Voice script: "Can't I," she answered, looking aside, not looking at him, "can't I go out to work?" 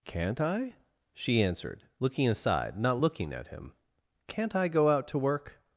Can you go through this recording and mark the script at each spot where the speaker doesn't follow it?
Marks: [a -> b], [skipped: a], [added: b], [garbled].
"Can't I," she answered, looking aside, not looking at him, "can't I go out to work?"